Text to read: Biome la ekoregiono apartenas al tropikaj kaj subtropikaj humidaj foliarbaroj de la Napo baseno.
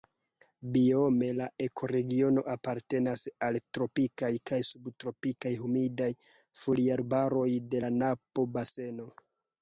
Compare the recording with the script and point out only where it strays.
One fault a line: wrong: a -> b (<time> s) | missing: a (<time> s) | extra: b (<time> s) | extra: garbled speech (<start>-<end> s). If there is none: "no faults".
no faults